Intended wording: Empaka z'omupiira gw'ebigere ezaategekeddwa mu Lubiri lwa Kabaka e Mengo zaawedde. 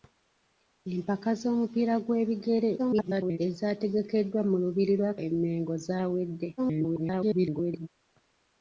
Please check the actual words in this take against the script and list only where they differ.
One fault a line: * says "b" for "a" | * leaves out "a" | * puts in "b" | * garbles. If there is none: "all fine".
* garbles
* leaves out "Kabaka"
* garbles